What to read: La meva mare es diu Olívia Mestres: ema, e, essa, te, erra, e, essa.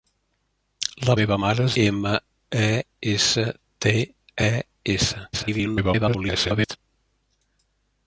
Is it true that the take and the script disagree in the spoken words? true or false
true